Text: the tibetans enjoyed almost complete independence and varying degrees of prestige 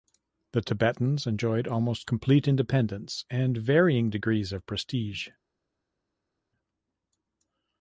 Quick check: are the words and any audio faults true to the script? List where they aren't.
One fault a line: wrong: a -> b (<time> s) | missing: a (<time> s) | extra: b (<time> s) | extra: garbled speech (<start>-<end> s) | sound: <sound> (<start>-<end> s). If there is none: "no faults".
no faults